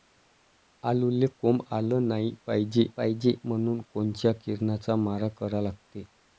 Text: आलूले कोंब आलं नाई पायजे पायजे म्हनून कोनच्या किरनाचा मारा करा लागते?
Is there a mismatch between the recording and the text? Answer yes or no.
no